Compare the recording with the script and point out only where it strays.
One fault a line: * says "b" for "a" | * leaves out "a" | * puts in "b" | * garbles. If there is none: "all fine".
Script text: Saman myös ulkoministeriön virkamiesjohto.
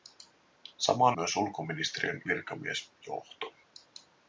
all fine